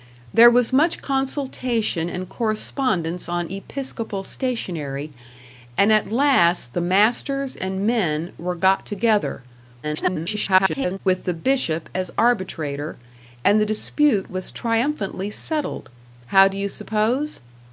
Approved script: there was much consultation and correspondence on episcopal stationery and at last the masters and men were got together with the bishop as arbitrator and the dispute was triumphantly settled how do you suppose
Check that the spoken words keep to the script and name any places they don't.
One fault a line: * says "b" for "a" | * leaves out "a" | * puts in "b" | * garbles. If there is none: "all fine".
* garbles